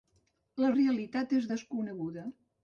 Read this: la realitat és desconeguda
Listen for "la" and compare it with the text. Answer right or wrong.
right